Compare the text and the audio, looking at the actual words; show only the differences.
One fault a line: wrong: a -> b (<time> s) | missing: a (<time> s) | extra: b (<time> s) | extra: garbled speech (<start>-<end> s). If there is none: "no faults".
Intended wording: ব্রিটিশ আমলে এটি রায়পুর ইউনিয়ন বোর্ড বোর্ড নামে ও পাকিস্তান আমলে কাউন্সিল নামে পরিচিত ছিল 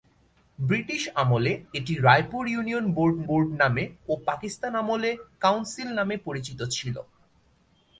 no faults